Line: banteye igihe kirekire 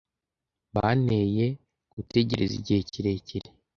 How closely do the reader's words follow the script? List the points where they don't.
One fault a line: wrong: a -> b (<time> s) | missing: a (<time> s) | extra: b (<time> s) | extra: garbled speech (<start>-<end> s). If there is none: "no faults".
extra: gutegereza (1.9 s)